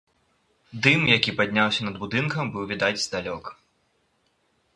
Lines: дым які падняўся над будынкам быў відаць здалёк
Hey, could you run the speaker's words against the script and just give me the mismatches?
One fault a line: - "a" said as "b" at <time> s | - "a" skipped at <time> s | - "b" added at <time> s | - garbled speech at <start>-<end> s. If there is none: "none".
none